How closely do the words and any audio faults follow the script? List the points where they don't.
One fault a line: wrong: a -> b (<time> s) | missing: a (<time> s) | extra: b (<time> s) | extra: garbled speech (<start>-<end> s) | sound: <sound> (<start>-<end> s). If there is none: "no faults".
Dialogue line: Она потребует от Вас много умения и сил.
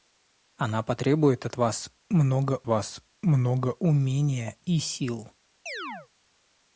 extra: Вас много (2.7 s)
sound: chirp (5.7-6.1 s)